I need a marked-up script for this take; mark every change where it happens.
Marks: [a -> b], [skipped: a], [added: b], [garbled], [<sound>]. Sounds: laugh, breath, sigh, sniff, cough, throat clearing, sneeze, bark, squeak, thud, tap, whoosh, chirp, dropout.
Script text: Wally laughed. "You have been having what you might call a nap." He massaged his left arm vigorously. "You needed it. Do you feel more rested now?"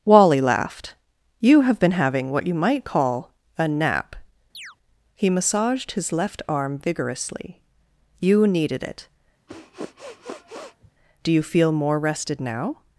Wally laughed. "You have been having what you might call a nap." [chirp] He massaged his left arm vigorously. "You needed it. [sniff] Do you feel more rested now?"